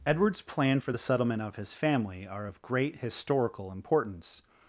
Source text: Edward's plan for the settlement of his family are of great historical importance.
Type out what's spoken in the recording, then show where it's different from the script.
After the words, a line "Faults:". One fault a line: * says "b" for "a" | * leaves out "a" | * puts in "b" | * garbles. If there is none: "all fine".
Edward's plan for the settlement of his family are of great historical importance.
Faults:
all fine